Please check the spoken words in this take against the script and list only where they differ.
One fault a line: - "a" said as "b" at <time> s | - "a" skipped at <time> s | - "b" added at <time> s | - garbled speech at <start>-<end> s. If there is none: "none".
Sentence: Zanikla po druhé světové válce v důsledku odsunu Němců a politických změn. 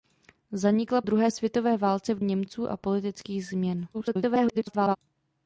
- "po" skipped at 1.0 s
- "důsledku odsunu" skipped at 2.2 s
- garbled speech at 3.9-5.0 s